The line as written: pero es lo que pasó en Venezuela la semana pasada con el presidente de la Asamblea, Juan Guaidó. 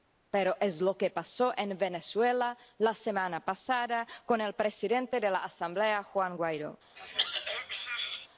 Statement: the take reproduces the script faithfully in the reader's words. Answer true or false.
true